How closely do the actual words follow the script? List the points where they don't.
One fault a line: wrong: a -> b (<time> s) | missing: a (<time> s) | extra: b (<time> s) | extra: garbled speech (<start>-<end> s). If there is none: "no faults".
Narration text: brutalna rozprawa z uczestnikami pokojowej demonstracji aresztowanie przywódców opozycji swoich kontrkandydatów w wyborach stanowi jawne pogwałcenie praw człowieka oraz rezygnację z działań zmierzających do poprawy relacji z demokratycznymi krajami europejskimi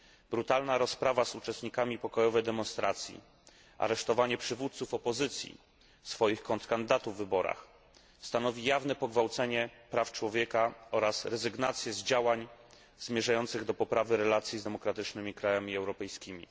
no faults